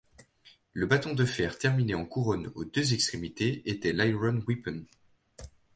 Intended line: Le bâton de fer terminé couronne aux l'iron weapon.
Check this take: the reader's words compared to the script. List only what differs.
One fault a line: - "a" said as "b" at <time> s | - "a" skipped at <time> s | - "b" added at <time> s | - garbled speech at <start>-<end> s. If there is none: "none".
- "en" added at 1.9 s
- "deux extrémités était" added at 2.6 s